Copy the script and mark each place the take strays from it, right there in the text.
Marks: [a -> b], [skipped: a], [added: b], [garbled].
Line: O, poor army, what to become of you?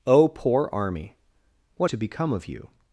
O, poor army, what to become of you?